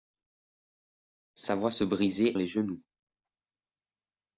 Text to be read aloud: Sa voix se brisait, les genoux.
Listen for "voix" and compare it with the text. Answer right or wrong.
right